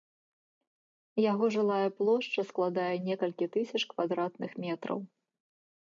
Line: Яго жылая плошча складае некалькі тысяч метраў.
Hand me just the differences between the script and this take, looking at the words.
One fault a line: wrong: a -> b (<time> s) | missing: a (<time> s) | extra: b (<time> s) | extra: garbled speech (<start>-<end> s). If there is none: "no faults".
extra: квадратных (4.0 s)